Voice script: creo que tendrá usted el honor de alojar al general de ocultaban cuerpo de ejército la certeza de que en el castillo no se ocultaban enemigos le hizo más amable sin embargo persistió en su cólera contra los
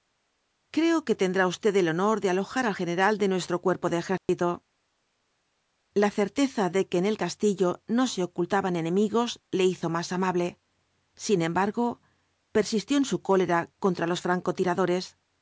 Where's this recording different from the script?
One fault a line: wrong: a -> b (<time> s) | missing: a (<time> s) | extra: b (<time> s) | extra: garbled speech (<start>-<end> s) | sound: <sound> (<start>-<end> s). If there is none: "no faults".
wrong: ocultaban -> nuestro (3.3 s)
sound: dropout (4.2-4.3 s)